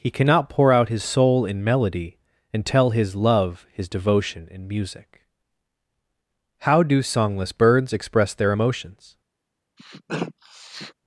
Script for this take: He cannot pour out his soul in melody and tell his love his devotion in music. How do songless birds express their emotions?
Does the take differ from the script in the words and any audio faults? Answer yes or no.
yes